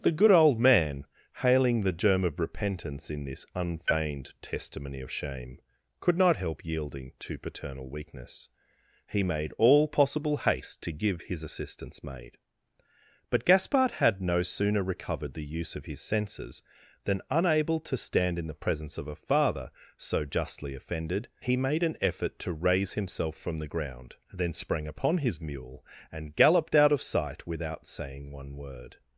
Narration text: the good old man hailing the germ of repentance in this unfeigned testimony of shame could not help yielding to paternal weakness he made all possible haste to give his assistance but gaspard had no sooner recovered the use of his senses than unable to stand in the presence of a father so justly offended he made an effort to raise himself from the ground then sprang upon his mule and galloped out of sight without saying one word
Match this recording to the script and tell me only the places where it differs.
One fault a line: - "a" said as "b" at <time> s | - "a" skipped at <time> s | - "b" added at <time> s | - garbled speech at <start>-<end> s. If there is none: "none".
- "maid" added at 12.0 s